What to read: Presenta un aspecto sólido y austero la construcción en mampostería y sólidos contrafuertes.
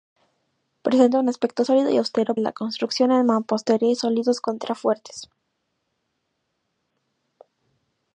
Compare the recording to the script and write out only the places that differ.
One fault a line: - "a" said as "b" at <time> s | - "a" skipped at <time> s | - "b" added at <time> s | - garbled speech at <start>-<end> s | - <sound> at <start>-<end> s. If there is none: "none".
none